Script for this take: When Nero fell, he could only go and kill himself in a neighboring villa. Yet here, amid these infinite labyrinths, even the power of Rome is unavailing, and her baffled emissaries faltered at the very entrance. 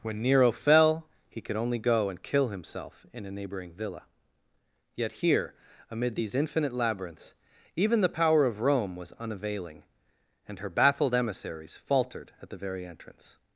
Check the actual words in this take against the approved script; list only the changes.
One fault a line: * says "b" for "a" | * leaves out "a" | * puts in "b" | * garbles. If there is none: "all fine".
* says "was" for "is"